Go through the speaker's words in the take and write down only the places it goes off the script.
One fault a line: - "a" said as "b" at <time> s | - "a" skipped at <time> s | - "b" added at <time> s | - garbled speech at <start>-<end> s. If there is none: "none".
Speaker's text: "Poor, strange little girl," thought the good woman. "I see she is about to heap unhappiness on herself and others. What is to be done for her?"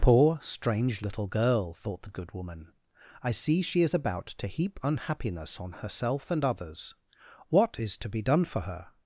none